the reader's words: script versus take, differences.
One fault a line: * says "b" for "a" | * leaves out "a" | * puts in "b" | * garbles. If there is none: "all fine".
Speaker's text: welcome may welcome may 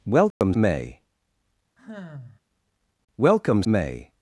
all fine